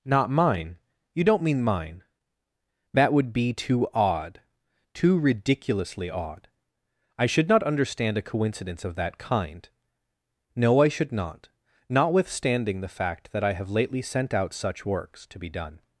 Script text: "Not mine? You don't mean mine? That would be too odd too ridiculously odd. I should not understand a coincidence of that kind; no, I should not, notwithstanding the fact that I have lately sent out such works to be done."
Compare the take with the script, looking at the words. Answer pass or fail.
pass